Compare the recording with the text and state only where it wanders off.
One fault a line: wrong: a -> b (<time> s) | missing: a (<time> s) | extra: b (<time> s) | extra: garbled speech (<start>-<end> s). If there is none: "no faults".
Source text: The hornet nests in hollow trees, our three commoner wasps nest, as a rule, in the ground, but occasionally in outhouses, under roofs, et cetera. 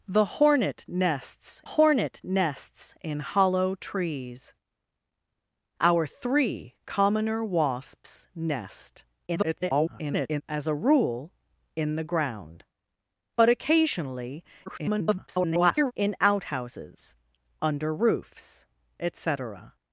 extra: hornet nests (1.6 s)
extra: garbled speech (9.3-10.4 s)
extra: garbled speech (14.7-15.9 s)